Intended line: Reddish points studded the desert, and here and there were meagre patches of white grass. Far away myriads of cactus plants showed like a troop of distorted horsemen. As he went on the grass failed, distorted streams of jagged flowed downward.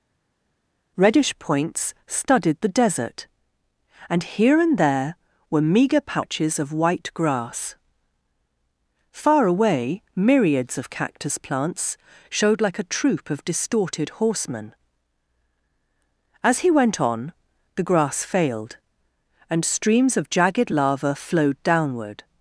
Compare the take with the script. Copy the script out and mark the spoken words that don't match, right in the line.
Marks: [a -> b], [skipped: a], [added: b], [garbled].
Reddish points studded the desert, and here and there were meagre patches of white grass. Far away myriads of cactus plants showed like a troop of distorted horsemen. As he went on the grass failed, [distorted -> and] streams of jagged [added: lava] flowed downward.